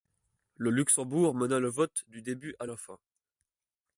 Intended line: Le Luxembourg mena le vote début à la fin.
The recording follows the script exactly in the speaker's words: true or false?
false